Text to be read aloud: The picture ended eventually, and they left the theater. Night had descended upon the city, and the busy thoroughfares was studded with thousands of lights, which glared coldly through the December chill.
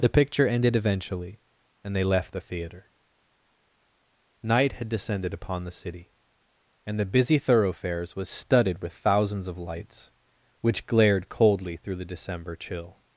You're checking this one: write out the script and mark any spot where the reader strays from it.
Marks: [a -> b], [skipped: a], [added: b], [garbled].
The picture ended eventually, and they left the theater. Night had descended upon the city, and the busy thoroughfares was studded with thousands of lights, which glared coldly through the December chill.